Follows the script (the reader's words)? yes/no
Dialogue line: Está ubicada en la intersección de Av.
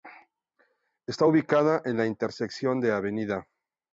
yes